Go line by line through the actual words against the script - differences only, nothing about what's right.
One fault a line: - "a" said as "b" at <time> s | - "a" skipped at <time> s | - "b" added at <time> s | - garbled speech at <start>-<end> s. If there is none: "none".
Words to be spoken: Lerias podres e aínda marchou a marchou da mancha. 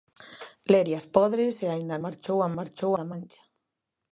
none